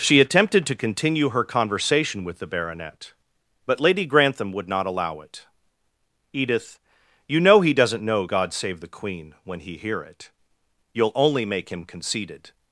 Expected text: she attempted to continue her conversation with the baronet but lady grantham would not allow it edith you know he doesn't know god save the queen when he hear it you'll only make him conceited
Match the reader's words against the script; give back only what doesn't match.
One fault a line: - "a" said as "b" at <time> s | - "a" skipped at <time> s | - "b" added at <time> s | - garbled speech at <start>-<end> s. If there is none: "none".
none